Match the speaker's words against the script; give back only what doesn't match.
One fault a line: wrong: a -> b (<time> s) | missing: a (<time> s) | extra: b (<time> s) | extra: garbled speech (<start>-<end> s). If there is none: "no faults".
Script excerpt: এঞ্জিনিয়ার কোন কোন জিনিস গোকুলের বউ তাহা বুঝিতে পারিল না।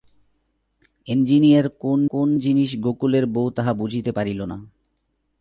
no faults